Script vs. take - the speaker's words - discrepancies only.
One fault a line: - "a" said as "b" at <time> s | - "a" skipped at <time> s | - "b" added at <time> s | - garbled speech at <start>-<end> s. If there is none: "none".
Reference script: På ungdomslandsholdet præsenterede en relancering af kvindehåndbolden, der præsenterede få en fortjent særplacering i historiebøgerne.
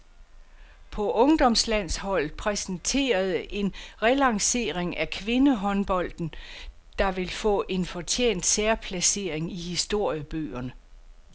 - "præsenterede" said as "vil" at 7.1 s